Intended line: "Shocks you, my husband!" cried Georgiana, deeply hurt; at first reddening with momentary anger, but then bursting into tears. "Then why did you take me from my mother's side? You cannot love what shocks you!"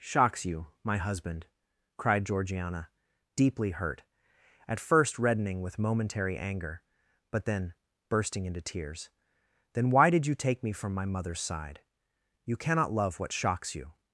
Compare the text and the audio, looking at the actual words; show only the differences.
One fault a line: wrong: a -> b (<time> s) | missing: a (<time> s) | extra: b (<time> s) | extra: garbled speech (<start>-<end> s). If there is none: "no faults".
no faults